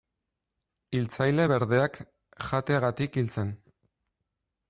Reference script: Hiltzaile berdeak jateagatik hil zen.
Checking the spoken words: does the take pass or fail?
pass